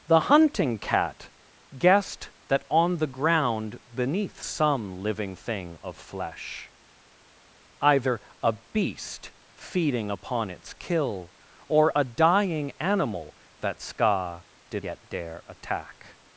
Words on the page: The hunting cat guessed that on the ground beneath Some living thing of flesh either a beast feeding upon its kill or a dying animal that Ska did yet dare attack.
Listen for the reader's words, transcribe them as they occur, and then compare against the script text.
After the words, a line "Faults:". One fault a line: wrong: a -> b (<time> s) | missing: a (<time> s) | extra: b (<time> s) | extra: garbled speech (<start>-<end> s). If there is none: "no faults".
The hunting cat guessed that on the ground beneath Some living thing of flesh either a beast feeding upon its kill or a dying animal that Ska did yet dare attack.
Faults:
no faults